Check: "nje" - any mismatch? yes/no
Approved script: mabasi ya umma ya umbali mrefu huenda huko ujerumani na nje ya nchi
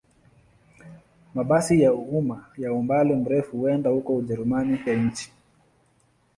yes